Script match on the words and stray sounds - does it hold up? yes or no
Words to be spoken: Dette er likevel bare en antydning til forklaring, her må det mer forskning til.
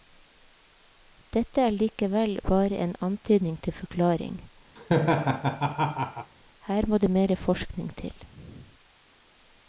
no